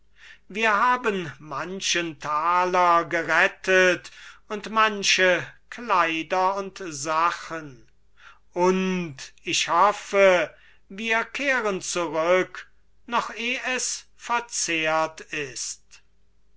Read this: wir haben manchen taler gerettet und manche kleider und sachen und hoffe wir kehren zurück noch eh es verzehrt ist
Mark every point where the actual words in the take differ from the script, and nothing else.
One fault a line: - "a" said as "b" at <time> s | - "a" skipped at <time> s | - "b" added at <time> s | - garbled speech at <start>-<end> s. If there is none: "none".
- "ich" added at 9.4 s